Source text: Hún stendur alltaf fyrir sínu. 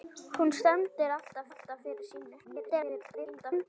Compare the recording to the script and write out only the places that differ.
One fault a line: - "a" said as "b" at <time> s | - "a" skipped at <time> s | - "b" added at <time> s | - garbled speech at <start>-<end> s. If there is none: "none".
- "alltaf" added at 1.5 s
- garbled speech at 2.4-3.7 s